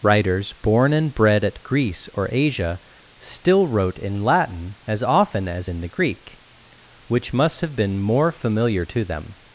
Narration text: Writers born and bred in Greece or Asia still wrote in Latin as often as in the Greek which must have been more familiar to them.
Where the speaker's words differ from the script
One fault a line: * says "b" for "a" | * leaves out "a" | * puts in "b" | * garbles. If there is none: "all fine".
* says "at" for "in"